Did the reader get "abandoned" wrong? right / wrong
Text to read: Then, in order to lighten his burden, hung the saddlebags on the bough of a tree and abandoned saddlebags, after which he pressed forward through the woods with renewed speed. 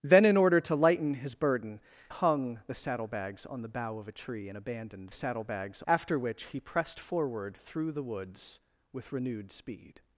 right